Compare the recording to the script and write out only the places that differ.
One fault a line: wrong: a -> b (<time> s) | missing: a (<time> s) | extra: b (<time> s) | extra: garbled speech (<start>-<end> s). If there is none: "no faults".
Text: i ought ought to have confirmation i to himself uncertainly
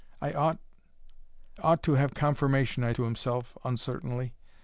no faults